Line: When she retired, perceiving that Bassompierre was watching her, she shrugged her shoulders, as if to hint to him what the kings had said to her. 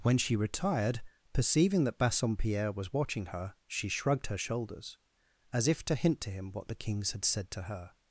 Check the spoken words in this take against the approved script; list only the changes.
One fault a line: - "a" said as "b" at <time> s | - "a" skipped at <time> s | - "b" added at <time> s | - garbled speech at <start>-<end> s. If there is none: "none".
none